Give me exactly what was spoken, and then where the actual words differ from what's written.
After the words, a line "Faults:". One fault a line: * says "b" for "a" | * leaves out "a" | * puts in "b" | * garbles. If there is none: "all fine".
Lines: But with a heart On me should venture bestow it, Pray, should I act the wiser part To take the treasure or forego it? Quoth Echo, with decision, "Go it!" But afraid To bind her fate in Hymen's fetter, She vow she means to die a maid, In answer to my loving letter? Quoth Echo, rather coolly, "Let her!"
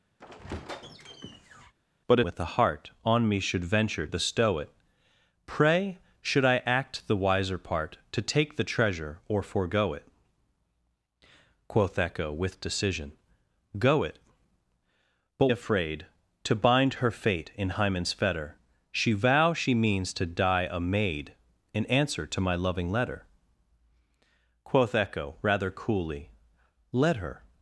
But with a heart On me should venture bestow it, Pray, should I act the wiser part To take the treasure or forego it? Quoth Echo, with decision, "Go it!" But afraid To bind her fate in Hymen's fetter, She vow she means to die a maid, In answer to my loving letter? Quoth Echo, rather coolly, "Let her!"
Faults:
all fine